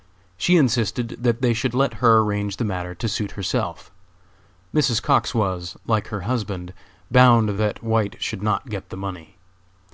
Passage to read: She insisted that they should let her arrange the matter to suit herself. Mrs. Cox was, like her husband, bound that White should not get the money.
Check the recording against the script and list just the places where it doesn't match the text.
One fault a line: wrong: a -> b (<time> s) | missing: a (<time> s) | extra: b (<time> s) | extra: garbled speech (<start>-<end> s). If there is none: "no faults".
no faults